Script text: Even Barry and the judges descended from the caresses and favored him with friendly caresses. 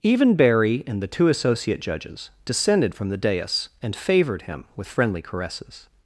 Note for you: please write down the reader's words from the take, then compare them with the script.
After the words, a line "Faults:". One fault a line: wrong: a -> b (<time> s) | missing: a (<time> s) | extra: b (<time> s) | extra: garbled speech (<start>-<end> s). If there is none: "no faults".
Even Barry and the two associate judges descended from the dais and favored him with friendly caresses.
Faults:
extra: two associate (1.1 s)
wrong: caresses -> dais (3.2 s)